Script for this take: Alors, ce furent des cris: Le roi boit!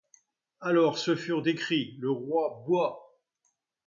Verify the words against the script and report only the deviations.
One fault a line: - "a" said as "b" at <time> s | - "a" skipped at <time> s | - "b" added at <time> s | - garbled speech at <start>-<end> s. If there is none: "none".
none